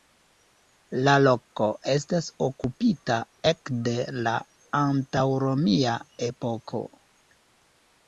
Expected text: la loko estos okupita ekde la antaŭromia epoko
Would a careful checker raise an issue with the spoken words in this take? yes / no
yes